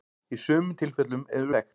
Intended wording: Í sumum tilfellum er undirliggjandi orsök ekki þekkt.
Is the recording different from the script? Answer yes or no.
yes